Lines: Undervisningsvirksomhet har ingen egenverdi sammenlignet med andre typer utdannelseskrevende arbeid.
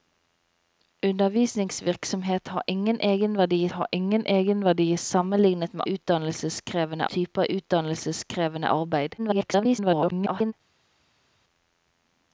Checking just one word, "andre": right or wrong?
wrong